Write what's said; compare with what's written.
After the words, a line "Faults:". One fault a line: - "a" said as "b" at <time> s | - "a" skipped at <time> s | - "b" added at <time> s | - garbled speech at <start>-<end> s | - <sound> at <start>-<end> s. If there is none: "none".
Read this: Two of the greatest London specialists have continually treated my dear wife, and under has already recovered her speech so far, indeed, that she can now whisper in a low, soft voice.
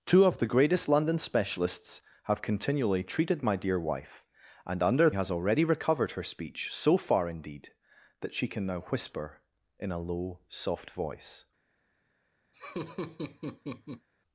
Two of the greatest London specialists have continually treated my dear wife, and under has already recovered her speech so far, indeed, that she can now whisper in a low, soft voice.
Faults:
- laugh at 12.5-14.1 s